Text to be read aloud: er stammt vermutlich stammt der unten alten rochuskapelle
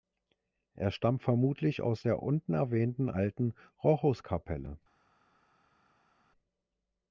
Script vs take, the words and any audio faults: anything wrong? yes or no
yes